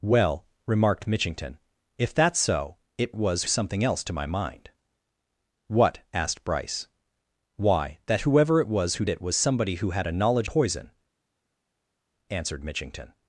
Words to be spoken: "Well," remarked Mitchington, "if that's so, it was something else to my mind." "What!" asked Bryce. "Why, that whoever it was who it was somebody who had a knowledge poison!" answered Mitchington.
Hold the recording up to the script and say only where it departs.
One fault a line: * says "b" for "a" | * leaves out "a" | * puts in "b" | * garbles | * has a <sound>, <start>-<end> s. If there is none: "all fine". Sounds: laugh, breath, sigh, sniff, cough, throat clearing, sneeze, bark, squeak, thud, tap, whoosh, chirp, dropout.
all fine